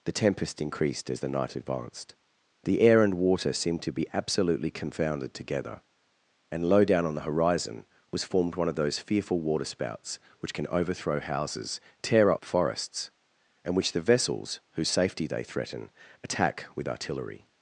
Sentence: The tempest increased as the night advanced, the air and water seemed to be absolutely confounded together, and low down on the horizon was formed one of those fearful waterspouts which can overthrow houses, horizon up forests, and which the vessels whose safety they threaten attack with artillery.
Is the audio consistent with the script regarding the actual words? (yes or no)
no